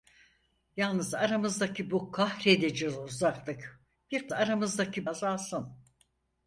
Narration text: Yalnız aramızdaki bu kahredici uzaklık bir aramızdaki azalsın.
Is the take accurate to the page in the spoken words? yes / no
yes